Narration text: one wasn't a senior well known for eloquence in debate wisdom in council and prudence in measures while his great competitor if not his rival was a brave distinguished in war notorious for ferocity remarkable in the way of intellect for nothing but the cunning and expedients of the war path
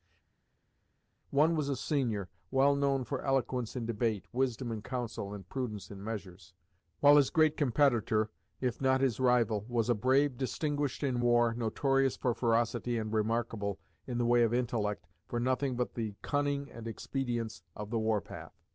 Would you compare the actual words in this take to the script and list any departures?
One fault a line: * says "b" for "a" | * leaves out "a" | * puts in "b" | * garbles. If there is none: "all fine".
* says "was" for "wasn't"
* puts in "and"